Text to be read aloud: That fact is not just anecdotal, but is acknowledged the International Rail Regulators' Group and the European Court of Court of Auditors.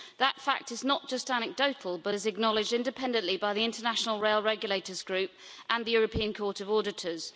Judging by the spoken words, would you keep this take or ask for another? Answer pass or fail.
fail